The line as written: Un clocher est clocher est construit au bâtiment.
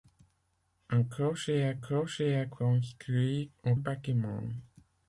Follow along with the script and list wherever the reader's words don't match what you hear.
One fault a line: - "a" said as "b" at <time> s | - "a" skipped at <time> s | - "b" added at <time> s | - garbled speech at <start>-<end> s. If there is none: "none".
none